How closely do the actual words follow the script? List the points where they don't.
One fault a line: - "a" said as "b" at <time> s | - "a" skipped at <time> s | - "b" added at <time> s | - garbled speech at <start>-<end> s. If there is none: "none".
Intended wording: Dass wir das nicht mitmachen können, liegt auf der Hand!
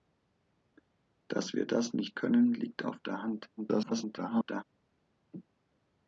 - "mitmachen" skipped at 2.2 s
- garbled speech at 3.6-4.6 s